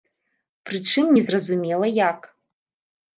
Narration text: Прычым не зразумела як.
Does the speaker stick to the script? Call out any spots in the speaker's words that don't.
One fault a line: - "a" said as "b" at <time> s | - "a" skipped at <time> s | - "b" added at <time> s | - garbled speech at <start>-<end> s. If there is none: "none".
none